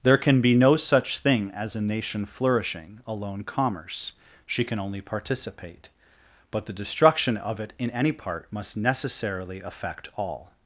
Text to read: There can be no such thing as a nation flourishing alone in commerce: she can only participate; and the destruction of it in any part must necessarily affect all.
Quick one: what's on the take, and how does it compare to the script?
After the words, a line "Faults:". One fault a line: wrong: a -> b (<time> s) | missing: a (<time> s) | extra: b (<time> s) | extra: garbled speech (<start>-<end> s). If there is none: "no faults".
There can be no such thing as a nation flourishing alone commerce: she can only participate; but the destruction of it in any part must necessarily affect all.
Faults:
missing: in (3.4 s)
wrong: and -> but (6.5 s)